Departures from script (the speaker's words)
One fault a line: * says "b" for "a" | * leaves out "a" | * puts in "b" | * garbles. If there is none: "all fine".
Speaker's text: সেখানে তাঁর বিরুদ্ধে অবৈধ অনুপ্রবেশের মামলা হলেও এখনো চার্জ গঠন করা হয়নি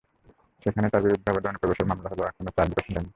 * leaves out "করা"